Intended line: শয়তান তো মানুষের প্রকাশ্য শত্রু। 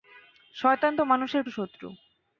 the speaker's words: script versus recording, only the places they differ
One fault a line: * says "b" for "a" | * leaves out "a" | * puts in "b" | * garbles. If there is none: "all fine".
* leaves out "প্রকাশ্য"